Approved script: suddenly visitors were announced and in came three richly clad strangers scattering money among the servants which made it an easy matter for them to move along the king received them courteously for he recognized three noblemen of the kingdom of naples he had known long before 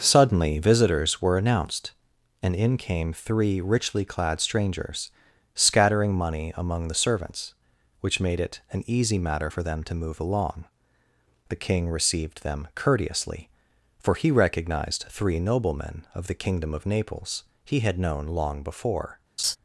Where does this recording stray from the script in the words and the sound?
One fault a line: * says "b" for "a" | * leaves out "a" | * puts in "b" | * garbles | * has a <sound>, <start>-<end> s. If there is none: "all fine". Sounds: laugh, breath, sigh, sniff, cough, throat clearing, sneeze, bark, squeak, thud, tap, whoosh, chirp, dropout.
* has a laugh, 19.4-19.6 s